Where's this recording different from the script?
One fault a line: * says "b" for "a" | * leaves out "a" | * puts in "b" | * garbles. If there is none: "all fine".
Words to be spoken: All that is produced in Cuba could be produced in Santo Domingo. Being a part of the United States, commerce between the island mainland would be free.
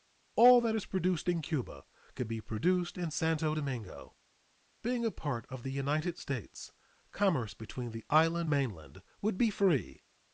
all fine